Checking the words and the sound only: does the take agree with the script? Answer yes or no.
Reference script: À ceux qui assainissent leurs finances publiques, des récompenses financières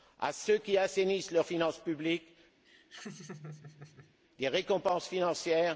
no